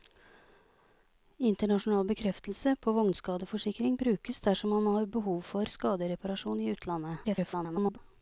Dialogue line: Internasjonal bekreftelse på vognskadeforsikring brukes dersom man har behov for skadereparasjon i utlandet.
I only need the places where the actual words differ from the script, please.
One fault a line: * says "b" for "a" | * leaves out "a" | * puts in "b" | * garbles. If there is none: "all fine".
* garbles